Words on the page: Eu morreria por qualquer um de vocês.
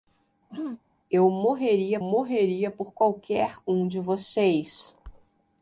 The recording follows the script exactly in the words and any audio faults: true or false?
false